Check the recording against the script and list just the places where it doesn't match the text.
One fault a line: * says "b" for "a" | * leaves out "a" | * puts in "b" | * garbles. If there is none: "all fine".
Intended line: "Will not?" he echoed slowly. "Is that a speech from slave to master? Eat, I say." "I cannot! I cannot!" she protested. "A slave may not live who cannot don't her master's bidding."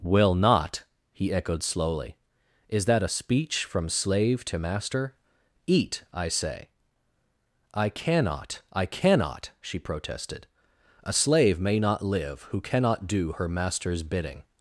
* says "do" for "don't"